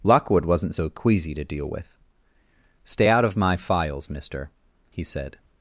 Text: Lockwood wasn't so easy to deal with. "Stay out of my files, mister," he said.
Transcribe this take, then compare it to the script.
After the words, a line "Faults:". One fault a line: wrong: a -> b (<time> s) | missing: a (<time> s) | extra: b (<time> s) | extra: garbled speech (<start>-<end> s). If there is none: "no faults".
Lockwood wasn't so queasy to deal with. "Stay out of my files, mister," he said.
Faults:
wrong: easy -> queasy (0.9 s)